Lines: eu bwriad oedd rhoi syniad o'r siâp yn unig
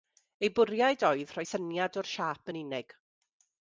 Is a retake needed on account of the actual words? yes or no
no